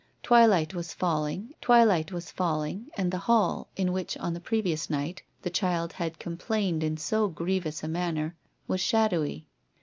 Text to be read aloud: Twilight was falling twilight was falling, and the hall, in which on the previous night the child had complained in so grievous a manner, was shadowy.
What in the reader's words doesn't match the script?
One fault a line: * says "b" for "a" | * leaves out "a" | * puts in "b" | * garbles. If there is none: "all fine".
all fine